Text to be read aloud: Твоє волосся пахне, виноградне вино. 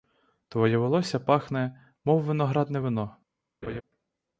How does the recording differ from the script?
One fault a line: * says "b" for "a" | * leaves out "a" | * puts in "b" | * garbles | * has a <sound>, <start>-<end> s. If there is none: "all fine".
* puts in "мов"
* has a laugh, 3.6-3.8 s